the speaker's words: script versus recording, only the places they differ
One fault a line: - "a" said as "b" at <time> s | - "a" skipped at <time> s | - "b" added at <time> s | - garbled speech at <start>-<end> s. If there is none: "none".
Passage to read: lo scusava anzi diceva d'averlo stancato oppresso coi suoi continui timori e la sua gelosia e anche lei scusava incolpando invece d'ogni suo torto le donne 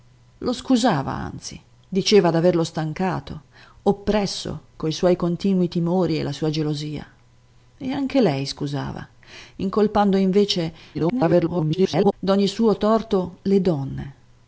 - garbled speech at 10.9-12.1 s